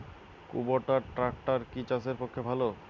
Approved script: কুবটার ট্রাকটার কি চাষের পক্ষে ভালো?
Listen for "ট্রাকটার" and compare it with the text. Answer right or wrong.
right